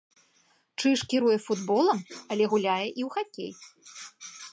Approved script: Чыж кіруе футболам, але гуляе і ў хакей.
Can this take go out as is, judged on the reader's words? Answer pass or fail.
pass